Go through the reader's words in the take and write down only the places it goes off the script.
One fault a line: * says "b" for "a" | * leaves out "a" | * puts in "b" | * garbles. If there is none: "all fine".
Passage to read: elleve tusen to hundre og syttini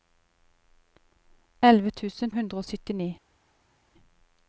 * leaves out "to"